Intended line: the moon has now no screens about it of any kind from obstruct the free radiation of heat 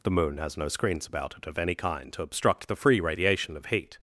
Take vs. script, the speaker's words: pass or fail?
fail